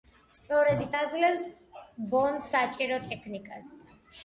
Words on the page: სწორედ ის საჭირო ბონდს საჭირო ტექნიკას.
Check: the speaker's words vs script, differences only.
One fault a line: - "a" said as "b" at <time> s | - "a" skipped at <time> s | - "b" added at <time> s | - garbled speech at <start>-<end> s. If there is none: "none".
- "საჭირო" said as "აძლევს" at 1.0 s